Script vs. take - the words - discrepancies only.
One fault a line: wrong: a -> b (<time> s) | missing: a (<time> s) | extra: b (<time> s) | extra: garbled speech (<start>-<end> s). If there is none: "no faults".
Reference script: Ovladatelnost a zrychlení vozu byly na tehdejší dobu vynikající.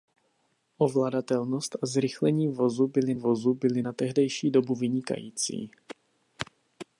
extra: vozu byly (3.1 s)